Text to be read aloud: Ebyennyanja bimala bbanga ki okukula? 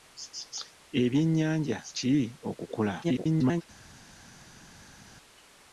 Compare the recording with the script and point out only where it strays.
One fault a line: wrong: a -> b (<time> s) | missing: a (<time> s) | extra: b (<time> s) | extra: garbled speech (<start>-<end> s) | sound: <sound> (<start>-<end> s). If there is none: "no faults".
missing: bimala bbanga (1.8 s)
extra: garbled speech (3.0-3.6 s)